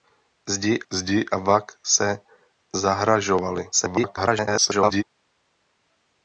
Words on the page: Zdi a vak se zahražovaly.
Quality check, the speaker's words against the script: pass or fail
fail